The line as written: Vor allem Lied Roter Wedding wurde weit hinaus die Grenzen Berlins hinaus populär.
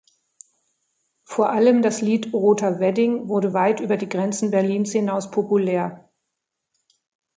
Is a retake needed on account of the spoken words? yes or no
yes